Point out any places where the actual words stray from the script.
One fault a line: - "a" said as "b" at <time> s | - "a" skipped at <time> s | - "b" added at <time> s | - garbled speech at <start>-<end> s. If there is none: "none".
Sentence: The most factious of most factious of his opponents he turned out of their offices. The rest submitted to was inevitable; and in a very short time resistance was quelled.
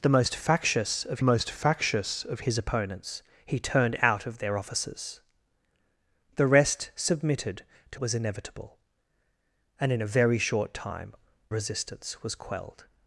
none